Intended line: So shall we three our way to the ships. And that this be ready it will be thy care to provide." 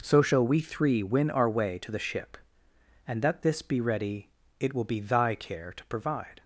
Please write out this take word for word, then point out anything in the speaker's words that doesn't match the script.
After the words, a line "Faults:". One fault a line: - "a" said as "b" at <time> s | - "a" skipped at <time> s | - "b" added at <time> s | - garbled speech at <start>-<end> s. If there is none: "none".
So shall we three win our way to the ship. And that this be ready it will be thy care to provide."
Faults:
- "win" added at 1.0 s
- "ships" said as "ship" at 2.0 s